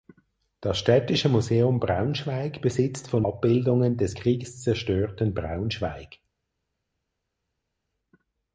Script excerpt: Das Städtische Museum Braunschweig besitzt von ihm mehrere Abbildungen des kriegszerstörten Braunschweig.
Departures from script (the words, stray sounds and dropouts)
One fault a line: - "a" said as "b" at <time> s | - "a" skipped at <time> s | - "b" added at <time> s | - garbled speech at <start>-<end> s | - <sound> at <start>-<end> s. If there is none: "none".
- "ihm mehrere" skipped at 3.2 s